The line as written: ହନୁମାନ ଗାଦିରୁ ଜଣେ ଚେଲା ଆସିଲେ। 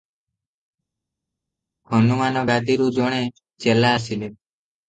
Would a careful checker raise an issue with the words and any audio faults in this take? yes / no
no